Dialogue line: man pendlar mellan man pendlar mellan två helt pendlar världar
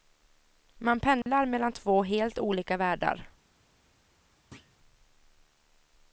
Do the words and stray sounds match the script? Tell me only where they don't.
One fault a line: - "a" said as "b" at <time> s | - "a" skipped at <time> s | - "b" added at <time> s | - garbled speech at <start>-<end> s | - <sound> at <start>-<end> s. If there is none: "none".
- dropout at 1.2-1.3 s
- "man pendlar mellan" skipped at 1.7 s
- "pendlar" said as "olika" at 2.4 s
- thud at 4.5-4.8 s